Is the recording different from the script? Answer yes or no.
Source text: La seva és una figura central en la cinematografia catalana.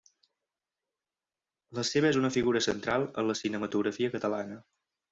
no